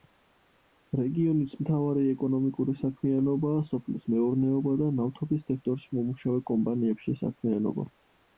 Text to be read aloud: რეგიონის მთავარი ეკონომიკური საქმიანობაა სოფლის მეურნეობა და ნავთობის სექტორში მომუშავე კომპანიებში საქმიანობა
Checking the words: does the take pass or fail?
pass